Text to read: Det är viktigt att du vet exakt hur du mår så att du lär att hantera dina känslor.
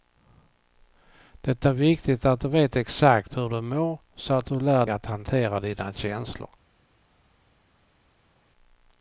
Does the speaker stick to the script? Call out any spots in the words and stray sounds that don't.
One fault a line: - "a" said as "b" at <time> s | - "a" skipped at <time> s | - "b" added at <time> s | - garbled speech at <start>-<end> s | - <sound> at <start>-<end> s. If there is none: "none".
none